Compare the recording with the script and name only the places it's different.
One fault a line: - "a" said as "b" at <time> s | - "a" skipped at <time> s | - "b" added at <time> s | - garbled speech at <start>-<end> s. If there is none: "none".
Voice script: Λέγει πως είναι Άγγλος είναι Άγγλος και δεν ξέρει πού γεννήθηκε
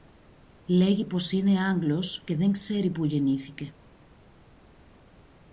- "είναι Άγγλος" skipped at 2.2 s